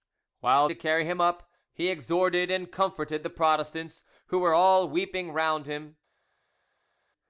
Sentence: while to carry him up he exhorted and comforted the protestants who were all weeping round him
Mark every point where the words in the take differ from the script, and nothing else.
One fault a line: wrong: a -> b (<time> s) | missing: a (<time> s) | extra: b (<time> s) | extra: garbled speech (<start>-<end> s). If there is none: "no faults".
no faults